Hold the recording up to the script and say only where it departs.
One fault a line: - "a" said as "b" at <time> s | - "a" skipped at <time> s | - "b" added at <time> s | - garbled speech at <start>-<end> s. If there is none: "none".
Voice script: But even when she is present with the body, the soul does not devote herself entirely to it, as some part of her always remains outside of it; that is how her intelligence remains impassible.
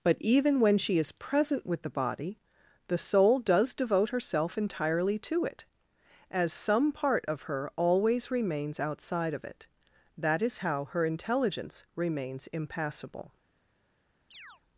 - "not" skipped at 3.7 s